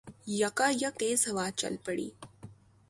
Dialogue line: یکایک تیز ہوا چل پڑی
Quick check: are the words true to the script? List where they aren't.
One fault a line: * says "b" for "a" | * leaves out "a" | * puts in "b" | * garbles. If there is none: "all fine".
all fine